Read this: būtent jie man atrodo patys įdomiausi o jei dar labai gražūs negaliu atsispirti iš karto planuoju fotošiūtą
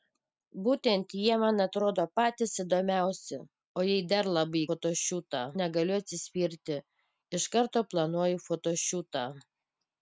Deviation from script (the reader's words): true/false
true